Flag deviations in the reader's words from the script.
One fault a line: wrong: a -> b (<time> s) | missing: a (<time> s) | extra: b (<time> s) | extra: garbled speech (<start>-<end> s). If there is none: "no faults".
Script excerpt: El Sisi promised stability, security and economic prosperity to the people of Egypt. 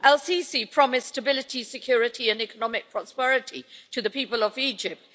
no faults